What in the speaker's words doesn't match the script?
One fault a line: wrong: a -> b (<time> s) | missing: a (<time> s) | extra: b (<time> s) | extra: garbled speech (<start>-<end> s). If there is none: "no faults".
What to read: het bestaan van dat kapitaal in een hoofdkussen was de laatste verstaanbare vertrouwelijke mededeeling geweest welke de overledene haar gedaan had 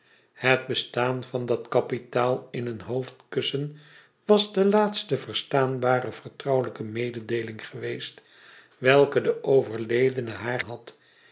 missing: gedaan (10.6 s)